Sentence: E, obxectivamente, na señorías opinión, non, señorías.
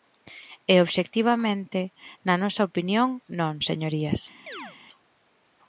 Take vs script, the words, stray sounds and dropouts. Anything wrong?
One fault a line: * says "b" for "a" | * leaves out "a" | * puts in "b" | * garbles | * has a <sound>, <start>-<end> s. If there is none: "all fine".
* says "nosa" for "señorías"
* has a chirp, 4.5-4.8 s